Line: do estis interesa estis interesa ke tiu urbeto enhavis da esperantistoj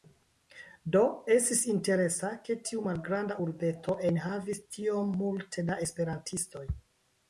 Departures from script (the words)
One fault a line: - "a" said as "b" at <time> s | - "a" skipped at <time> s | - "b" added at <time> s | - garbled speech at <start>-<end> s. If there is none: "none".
- "estis interesa" skipped at 2.3 s
- "malgranda" added at 2.9 s
- "tiom multe" added at 4.8 s